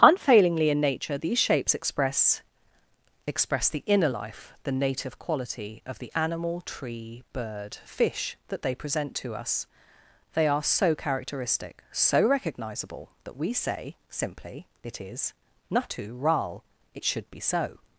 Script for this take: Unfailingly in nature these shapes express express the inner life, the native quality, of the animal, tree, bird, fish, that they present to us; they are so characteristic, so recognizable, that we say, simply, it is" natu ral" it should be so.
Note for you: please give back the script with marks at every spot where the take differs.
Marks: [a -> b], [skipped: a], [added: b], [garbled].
Unfailingly in nature these shapes express express the inner life, the native quality, of the animal, tree, bird, fish, that they present to us; they are so characteristic, so recognizable, that we say, simply, it is" natu ral" it should be so.